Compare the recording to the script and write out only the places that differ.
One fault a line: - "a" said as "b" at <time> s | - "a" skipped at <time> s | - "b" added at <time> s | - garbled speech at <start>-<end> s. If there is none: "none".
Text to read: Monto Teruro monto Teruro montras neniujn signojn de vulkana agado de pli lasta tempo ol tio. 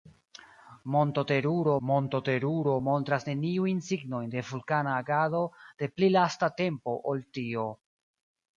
none